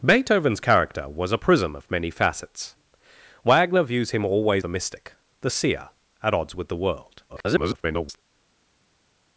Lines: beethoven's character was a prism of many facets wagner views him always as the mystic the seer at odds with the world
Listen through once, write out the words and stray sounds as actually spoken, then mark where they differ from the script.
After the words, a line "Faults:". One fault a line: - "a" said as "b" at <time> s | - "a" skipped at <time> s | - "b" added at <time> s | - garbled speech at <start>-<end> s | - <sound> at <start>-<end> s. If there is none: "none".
beethoven's character was a prism of many facets wagner views him always the mystic the seer at odds with the world [garbled]
Faults:
- "as" skipped at 4.6 s
- garbled speech at 7.3-8.2 s